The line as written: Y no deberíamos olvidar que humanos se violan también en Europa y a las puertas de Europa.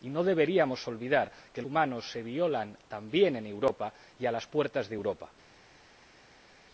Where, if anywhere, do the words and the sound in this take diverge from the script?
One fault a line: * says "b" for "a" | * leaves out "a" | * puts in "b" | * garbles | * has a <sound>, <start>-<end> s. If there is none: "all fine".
all fine